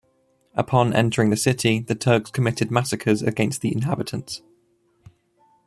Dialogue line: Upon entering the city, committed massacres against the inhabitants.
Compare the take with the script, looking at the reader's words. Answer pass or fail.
fail